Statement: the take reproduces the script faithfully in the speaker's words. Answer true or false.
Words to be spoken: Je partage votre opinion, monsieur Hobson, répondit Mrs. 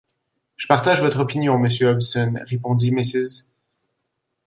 true